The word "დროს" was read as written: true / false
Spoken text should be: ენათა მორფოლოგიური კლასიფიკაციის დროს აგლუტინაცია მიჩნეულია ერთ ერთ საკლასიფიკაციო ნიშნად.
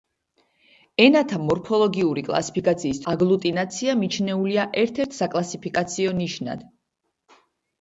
false